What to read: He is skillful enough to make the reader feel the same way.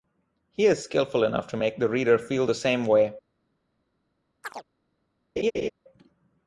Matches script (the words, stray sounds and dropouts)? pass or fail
fail